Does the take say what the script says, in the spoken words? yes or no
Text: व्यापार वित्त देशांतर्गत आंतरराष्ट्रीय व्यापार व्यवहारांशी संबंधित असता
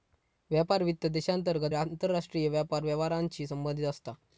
yes